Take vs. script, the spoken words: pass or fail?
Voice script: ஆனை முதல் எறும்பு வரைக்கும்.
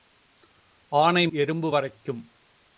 fail